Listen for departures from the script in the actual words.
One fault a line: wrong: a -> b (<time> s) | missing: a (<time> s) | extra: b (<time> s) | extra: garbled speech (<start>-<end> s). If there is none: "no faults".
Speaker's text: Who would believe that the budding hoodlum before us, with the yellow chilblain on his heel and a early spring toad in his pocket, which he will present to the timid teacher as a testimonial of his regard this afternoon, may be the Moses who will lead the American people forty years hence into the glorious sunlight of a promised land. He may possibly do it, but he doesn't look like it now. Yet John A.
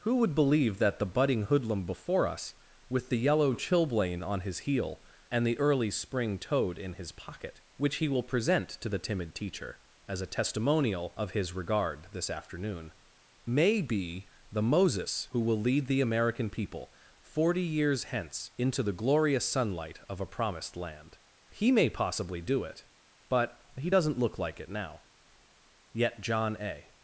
wrong: a -> the (5.4 s)